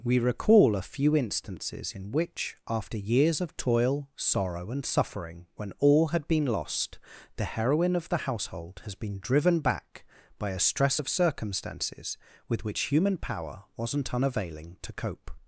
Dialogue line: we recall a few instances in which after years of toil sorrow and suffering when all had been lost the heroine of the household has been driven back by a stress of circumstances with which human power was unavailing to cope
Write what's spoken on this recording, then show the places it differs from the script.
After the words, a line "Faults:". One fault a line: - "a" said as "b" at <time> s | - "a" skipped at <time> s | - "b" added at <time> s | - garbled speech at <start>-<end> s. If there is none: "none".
we recall a few instances in which after years of toil sorrow and suffering when all had been lost the heroine of the household has been driven back by a stress of circumstances with which human power wasn't unavailing to cope
Faults:
- "was" said as "wasn't" at 13.8 s